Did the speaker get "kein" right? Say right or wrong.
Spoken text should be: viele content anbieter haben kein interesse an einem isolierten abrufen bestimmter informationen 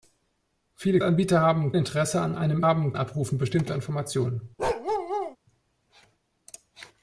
wrong